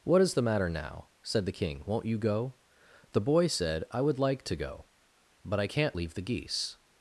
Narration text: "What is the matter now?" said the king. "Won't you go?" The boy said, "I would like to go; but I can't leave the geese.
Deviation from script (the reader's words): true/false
false